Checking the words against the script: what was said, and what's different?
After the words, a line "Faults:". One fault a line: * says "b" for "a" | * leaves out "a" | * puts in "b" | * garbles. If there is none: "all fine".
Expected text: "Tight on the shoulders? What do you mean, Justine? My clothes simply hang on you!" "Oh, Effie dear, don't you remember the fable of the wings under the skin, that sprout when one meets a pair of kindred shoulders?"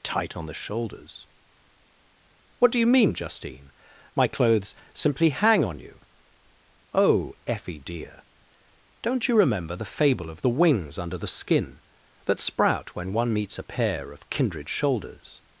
"Tight on the shoulders? What do you mean, Justine? My clothes simply hang on you!" "Oh, Effie dear, don't you remember the fable of the wings under the skin, that sprout when one meets a pair of kindred shoulders?"
Faults:
all fine